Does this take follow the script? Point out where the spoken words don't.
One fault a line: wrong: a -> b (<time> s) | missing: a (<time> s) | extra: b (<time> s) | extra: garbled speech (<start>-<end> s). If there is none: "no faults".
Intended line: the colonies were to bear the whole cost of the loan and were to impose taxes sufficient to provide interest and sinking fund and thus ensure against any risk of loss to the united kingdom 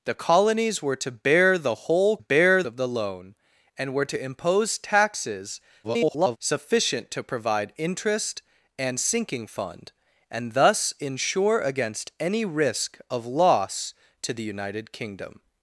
wrong: cost -> bear (2.2 s)
extra: garbled speech (5.8-6.4 s)